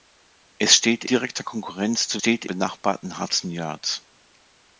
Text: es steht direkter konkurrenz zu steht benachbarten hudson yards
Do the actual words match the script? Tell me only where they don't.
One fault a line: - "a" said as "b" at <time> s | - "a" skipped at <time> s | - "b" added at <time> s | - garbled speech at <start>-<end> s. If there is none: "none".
none